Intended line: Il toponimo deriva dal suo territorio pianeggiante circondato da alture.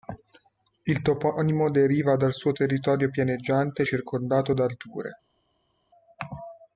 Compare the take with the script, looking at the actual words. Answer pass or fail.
pass